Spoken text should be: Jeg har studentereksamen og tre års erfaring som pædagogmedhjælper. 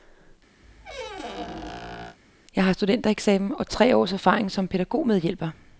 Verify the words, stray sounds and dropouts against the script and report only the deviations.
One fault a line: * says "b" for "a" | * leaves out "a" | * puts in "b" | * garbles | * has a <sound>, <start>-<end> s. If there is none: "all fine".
* has a squeak, 0.6-2.2 s